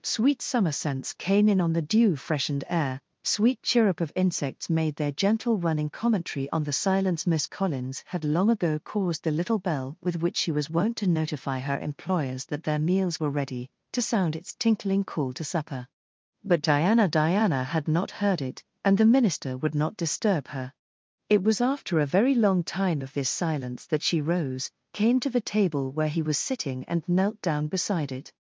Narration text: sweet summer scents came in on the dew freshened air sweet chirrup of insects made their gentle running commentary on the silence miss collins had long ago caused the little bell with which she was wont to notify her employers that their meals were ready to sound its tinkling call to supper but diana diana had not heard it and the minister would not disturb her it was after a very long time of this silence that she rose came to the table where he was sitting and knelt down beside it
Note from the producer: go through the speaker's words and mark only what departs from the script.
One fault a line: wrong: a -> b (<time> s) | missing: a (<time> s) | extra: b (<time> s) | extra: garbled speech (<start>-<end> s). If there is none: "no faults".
no faults